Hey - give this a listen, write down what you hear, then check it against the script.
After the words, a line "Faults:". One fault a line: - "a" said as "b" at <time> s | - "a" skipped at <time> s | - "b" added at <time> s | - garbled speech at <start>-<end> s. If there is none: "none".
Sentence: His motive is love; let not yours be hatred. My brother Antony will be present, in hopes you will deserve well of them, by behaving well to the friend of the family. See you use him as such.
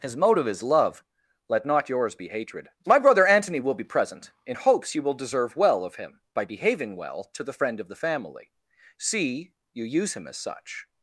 His motive is love; let not yours be hatred. My brother Antony will be present, in hopes you will deserve well of him, by behaving well to the friend of the family. See you use him as such.
Faults:
- "them" said as "him" at 6.0 s